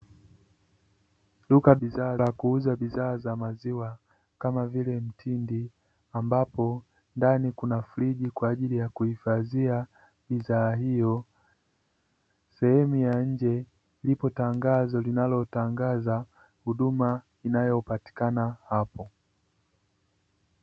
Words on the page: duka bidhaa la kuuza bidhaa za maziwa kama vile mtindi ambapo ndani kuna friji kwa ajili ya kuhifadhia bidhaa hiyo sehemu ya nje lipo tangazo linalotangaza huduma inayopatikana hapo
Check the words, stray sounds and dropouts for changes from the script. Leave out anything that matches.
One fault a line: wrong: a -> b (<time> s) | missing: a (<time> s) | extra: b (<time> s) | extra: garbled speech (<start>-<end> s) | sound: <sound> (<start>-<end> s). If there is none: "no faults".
no faults